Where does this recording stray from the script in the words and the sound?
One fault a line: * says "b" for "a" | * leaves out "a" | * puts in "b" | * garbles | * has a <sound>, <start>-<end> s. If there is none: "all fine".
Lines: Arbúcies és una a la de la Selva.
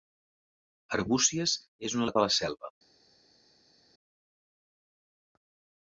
all fine